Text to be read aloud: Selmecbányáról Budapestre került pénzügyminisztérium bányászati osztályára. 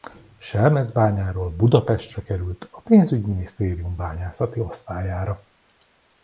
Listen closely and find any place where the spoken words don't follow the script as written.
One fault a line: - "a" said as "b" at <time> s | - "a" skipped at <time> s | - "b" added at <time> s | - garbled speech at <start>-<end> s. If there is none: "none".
- "a" added at 2.7 s